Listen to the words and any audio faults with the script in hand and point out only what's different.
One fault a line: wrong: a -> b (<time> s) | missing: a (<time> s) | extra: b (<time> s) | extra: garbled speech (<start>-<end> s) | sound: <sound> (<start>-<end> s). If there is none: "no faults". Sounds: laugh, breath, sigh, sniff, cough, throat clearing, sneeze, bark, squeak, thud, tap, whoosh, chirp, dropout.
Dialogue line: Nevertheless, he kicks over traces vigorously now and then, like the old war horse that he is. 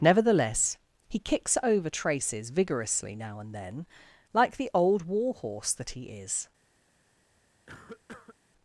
sound: cough (7.7-8.4 s)